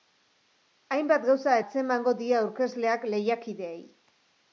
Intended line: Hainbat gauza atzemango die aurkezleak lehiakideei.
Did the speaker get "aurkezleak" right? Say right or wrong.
right